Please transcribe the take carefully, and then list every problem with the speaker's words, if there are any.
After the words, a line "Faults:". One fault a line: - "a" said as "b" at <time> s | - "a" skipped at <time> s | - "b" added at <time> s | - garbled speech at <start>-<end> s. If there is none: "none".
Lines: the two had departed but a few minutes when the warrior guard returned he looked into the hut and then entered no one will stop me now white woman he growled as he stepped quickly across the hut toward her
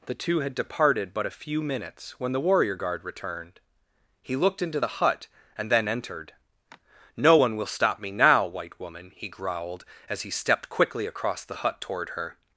the two had departed but a few minutes when the warrior guard returned he looked into the hut and then entered no one will stop me now white woman he growled as he stepped quickly across the hut toward her
Faults:
none